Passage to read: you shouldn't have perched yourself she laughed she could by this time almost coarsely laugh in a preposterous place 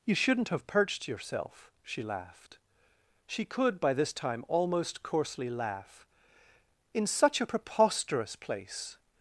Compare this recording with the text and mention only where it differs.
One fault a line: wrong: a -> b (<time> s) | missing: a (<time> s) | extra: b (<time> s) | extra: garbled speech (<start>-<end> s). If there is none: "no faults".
extra: such (7.0 s)